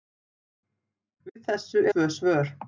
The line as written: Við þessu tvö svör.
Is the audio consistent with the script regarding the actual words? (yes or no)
yes